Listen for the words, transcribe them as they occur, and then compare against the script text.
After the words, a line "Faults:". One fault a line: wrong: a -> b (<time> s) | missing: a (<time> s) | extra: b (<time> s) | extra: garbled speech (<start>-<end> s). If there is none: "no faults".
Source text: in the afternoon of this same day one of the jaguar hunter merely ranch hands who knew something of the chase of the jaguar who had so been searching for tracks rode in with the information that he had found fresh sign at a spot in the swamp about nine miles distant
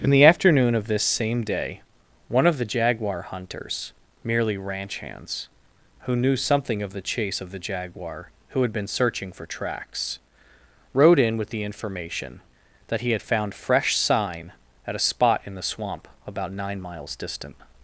in the afternoon of this same day one of the jaguar hunters merely ranch hands who knew something of the chase of the jaguar who had been searching for tracks rode in with the information that he had found fresh sign at a spot in the swamp about nine miles distant
Faults:
wrong: hunter -> hunters (3.3 s)
missing: so (8.7 s)